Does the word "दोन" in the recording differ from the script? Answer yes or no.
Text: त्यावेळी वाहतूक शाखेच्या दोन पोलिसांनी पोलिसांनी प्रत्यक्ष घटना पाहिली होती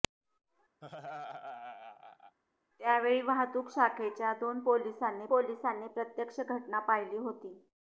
no